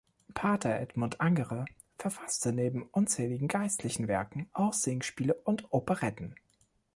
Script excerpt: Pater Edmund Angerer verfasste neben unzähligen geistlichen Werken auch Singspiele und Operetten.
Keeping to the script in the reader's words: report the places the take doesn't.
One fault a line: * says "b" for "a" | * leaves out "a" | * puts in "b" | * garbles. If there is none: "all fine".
all fine